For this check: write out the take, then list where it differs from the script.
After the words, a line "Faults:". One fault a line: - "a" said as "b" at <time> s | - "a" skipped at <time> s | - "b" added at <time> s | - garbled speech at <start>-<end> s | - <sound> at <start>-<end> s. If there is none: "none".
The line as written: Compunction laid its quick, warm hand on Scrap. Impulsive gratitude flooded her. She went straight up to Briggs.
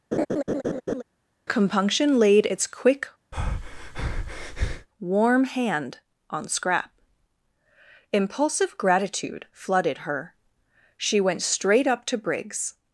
Compunction laid its quick, warm hand on Scrap. Impulsive gratitude flooded her. She went straight up to Briggs.
Faults:
- laugh at 0.1-1.0 s
- breath at 3.3-4.9 s